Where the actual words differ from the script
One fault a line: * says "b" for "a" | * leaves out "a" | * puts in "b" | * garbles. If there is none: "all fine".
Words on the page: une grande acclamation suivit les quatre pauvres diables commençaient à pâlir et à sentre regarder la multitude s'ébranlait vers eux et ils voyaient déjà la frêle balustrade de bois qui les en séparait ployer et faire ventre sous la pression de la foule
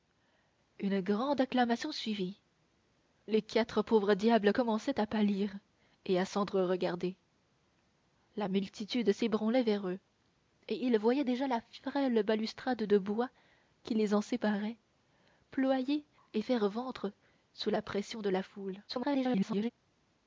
* garbles